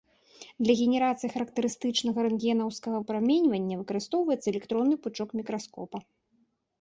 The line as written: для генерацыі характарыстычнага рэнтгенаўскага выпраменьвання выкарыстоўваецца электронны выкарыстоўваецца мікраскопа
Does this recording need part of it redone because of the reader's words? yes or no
yes